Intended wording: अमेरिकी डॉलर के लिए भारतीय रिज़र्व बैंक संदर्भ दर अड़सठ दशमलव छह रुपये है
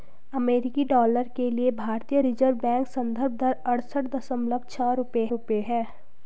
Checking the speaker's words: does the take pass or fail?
fail